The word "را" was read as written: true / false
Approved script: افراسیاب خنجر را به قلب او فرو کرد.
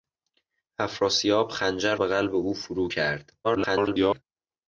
false